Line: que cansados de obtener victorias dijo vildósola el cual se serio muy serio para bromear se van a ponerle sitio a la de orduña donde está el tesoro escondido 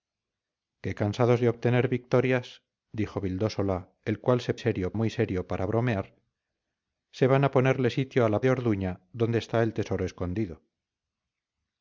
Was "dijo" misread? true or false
false